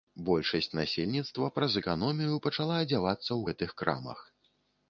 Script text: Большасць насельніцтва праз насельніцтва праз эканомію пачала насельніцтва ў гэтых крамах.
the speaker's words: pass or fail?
fail